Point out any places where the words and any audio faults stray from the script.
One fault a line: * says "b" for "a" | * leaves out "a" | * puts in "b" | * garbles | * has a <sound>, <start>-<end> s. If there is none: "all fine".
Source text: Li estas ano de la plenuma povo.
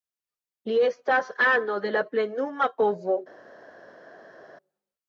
all fine